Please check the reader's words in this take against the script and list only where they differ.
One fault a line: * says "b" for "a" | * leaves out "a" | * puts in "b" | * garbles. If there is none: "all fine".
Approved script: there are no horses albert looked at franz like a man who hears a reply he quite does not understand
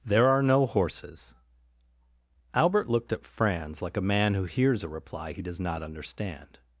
* leaves out "quite"